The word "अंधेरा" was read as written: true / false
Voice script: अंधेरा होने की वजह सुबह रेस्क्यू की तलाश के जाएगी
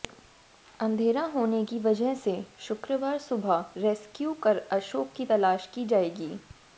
true